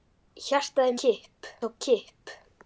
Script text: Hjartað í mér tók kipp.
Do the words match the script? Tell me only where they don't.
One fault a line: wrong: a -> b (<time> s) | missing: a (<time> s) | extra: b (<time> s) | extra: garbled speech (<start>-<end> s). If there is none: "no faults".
wrong: mér -> kipp (1.0 s)